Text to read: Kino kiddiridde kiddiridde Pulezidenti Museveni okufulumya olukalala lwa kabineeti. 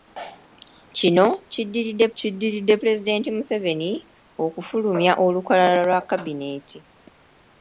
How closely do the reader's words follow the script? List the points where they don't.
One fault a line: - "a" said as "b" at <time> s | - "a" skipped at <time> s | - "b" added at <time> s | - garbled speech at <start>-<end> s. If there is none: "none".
none